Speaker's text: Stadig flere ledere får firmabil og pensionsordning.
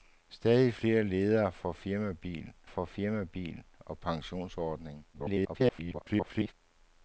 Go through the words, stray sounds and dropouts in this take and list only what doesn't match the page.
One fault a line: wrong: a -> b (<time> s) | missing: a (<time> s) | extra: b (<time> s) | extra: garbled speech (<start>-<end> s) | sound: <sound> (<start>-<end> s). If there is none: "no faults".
extra: får firmabil (2.6 s)
extra: garbled speech (5.1-6.5 s)